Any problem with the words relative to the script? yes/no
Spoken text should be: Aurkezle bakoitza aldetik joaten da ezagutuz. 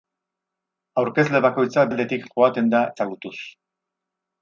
no